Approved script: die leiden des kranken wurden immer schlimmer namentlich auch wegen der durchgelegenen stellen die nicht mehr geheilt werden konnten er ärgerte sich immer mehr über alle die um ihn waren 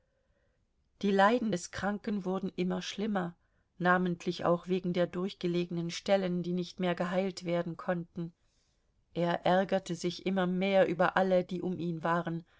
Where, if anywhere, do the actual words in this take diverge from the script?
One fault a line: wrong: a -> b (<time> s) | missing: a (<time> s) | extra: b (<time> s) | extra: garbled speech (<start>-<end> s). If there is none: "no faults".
no faults